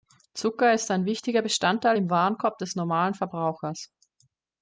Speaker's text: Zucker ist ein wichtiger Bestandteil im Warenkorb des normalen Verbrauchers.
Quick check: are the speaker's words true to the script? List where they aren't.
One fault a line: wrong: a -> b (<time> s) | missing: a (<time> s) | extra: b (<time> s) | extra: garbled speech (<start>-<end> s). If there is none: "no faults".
no faults